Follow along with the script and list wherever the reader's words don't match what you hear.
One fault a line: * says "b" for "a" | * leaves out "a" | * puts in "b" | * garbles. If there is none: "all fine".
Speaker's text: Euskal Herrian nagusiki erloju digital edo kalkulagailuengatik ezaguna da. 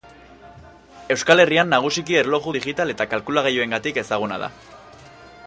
* says "eta" for "edo"